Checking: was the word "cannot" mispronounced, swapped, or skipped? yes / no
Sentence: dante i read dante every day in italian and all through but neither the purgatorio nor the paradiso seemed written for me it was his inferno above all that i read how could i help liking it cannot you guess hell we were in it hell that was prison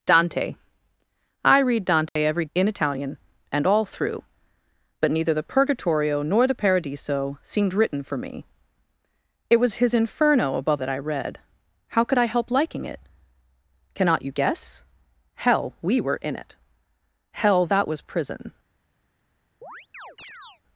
no